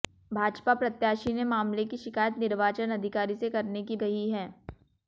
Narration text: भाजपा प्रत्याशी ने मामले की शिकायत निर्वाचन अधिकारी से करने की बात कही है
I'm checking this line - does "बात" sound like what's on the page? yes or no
no